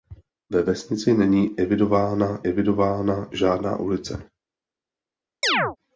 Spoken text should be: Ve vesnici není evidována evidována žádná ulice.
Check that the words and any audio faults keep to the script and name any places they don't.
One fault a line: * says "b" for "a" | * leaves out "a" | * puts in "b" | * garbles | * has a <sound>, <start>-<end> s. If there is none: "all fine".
* has a chirp, 5.4-5.8 s